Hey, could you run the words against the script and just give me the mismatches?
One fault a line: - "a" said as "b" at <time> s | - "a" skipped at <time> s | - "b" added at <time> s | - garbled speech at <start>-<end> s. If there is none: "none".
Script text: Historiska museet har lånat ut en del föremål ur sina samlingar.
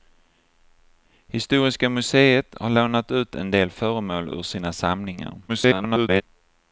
- garbled speech at 5.5-6.2 s